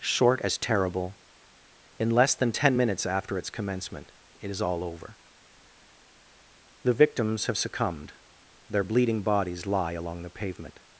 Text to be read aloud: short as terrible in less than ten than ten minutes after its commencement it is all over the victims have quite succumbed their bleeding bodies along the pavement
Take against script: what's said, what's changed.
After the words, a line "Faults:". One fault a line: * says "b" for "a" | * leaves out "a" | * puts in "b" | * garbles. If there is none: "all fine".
short as terrible in less than ten minutes after its commencement it is all over the victims have succumbed their bleeding bodies lie along the pavement
Faults:
* leaves out "than ten"
* leaves out "quite"
* puts in "lie"